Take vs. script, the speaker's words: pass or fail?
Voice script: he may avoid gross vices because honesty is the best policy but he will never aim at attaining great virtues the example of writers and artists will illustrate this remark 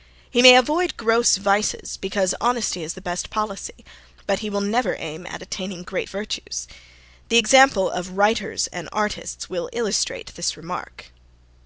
pass